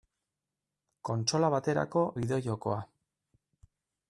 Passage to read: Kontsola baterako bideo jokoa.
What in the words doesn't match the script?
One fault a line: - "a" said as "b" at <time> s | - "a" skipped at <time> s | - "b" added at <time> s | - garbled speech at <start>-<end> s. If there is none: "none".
none